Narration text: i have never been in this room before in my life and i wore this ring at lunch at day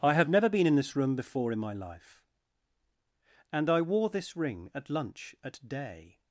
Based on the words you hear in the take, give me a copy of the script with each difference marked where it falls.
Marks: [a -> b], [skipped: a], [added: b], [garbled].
i have never been in this room before in my life and i wore this ring at lunch at day